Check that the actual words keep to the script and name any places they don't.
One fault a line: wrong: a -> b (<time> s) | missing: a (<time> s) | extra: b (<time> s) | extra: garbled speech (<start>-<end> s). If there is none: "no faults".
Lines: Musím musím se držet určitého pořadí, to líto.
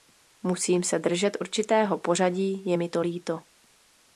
missing: musím (0.8 s)
extra: je mi (2.7 s)